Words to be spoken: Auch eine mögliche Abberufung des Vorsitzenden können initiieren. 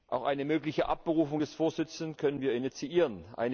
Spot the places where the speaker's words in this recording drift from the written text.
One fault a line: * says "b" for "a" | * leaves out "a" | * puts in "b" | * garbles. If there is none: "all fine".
* puts in "wir"